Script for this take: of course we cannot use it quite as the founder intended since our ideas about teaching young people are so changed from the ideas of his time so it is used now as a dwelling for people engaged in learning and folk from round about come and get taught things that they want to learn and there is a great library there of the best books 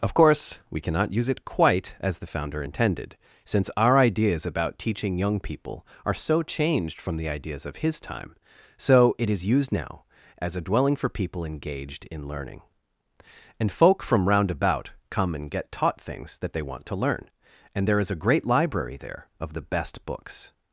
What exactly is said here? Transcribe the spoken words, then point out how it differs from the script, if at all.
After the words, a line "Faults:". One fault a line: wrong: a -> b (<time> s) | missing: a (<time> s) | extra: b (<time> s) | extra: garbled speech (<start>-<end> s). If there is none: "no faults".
of course we cannot use it quite as the founder intended since our ideas about teaching young people are so changed from the ideas of his time so it is used now as a dwelling for people engaged in learning and folk from round about come and get taught things that they want to learn and there is a great library there of the best books
Faults:
no faults